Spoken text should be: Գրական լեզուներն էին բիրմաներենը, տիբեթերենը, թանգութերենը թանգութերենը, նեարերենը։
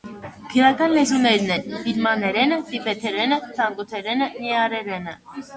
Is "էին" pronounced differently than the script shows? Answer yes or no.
yes